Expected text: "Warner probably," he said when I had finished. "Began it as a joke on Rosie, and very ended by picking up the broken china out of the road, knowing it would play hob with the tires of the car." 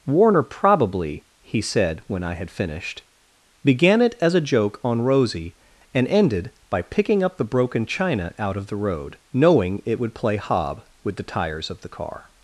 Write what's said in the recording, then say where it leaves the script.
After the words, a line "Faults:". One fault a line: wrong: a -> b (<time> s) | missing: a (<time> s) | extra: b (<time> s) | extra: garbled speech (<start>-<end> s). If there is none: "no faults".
"Warner probably," he said when I had finished. "Began it as a joke on Rosie, and ended by picking up the broken china out of the road, knowing it would play hob with the tires of the car."
Faults:
missing: very (6.1 s)